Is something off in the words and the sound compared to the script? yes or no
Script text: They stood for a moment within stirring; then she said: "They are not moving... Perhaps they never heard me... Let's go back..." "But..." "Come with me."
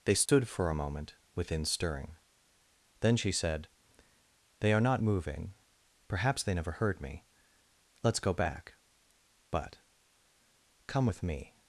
yes